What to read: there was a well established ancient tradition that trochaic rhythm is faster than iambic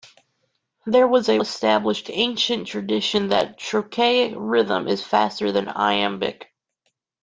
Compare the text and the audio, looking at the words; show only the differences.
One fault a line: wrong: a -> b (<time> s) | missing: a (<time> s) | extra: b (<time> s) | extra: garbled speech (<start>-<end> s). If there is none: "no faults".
missing: well (1.4 s)